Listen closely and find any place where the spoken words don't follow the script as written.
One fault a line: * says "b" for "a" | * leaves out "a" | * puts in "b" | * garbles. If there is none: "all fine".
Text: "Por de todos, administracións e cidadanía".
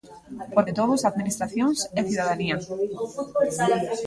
all fine